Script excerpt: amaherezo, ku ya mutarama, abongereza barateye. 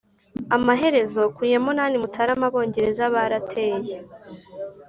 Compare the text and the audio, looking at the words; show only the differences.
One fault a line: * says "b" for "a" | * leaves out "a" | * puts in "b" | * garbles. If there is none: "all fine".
* puts in "munani"